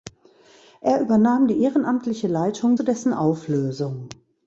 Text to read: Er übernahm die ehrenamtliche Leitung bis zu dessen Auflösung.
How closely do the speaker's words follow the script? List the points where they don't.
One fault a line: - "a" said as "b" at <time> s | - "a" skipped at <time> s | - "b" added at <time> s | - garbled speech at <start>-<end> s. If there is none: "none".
- "bis" skipped at 2.8 s